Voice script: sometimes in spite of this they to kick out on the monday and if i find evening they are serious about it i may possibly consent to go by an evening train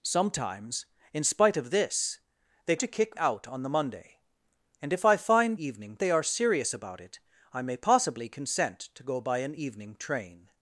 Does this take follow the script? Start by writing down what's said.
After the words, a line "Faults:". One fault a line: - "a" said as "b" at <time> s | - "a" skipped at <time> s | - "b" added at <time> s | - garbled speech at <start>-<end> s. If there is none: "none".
sometimes in spite of this they to kick out on the monday and if i find evening they are serious about it i may possibly consent to go by an evening train
Faults:
none